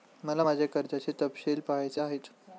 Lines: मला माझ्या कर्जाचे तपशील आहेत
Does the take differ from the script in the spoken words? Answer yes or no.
yes